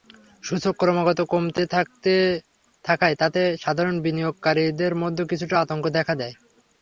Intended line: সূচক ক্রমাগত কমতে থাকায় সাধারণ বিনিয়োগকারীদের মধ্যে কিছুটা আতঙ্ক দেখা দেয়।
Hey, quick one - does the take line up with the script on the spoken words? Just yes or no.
no